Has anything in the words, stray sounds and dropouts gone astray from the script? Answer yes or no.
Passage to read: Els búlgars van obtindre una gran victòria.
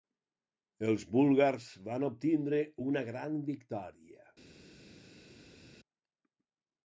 no